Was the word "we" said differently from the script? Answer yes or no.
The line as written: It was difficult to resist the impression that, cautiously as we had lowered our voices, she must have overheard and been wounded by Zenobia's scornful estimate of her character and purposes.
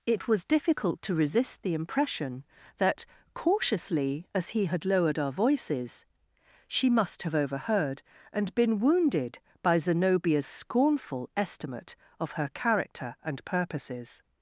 yes